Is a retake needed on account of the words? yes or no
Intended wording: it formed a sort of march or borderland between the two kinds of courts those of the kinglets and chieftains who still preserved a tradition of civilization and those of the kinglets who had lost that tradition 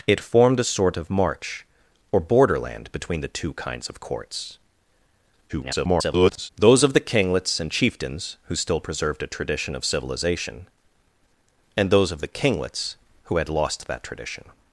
yes